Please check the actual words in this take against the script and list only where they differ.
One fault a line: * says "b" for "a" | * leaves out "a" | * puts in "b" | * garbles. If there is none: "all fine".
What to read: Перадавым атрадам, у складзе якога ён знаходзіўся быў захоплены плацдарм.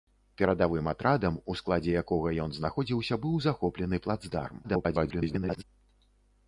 * garbles